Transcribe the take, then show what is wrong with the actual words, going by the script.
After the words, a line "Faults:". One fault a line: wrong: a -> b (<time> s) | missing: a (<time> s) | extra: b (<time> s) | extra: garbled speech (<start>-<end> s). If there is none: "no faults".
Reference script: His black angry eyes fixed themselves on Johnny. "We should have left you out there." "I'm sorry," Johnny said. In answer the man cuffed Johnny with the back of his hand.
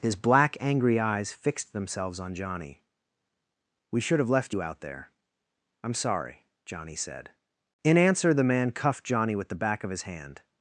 His black angry eyes fixed themselves on Johnny. "We should have left you out there." "I'm sorry," Johnny said. In answer the man cuffed Johnny with the back of his hand.
Faults:
no faults